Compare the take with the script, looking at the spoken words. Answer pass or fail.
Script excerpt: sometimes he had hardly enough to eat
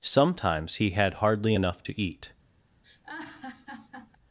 pass